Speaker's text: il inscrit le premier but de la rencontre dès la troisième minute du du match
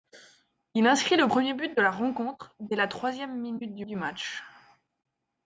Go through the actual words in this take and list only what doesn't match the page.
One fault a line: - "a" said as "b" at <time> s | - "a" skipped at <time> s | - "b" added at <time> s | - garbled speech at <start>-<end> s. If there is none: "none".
none